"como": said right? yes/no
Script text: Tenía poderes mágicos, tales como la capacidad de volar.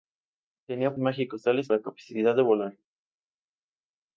no